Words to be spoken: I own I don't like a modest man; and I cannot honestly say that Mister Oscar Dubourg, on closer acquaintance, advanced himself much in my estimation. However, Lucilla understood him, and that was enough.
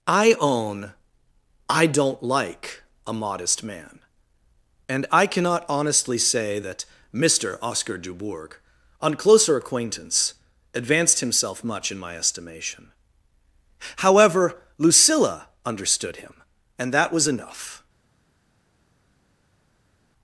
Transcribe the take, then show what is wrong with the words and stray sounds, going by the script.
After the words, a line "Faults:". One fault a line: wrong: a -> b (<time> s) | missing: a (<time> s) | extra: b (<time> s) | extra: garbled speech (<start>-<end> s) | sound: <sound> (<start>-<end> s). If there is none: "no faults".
I own I don't like a modest man; and I cannot honestly say that Mister Oscar Dubourg, on closer acquaintance, advanced himself much in my estimation. However, Lucilla understood him, and that was enough.
Faults:
no faults